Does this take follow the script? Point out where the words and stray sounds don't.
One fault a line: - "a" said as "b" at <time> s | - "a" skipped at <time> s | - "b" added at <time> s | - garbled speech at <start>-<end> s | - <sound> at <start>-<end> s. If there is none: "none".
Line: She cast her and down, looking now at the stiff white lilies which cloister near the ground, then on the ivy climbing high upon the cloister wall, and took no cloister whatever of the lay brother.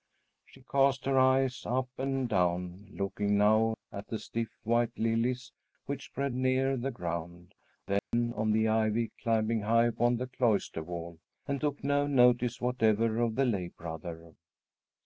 - "eyes up" added at 1.2 s
- "cloister" said as "spread" at 6.1 s
- dropout at 8.0-8.1 s
- "cloister" said as "notice" at 12.0 s